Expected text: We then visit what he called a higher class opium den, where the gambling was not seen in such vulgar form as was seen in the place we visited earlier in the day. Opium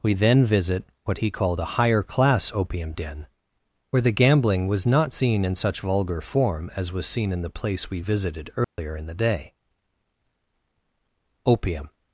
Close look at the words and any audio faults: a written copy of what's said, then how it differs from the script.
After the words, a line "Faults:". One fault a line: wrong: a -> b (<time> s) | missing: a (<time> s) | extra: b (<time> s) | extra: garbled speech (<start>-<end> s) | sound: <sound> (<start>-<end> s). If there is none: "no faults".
We then visit what he called a higher class opium den, where the gambling was not seen in such vulgar form as was seen in the place we visited earlier in the day. Opium
Faults:
sound: dropout (8.6-8.8 s)